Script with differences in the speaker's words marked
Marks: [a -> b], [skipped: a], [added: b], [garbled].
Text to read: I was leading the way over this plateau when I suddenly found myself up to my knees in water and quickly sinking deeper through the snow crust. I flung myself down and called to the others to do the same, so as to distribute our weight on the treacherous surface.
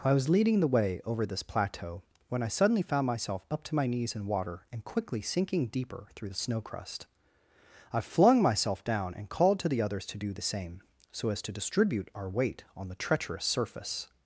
I was leading the way over this plateau when I suddenly found myself up to my knees in water and quickly sinking deeper through the snow crust. I flung myself down and called to the others to do the same, so as to distribute our weight on the treacherous surface.